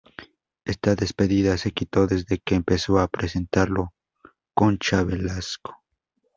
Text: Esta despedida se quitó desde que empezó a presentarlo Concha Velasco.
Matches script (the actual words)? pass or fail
pass